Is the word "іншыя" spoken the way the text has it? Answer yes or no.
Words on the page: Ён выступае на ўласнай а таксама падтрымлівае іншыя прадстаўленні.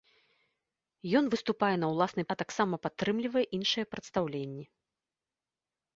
yes